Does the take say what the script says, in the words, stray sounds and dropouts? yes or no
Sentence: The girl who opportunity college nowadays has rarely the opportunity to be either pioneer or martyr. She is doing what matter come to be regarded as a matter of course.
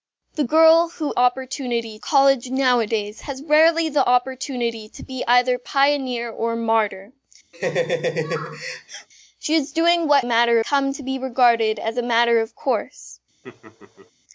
no